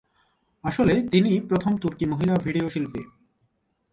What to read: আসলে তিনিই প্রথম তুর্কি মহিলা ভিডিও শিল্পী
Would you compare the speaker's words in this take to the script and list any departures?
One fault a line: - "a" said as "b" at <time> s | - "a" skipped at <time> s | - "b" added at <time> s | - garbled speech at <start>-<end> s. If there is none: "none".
none